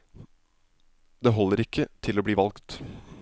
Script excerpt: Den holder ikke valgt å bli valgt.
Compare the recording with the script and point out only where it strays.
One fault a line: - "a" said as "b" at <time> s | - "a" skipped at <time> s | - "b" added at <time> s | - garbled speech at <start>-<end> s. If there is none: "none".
- "Den" said as "Det" at 1.2 s
- "valgt" said as "til" at 2.0 s